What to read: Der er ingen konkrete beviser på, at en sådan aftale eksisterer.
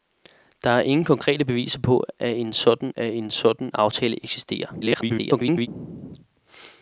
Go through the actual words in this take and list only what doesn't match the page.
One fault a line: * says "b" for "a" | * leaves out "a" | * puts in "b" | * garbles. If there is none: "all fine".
* puts in "at en sådan"
* garbles